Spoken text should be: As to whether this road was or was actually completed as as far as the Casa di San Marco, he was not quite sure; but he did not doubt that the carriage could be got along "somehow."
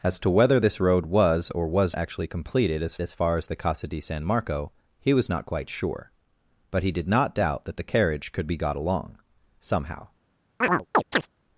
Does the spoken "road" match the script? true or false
true